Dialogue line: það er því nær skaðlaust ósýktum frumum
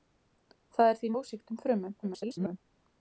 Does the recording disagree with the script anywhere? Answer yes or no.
yes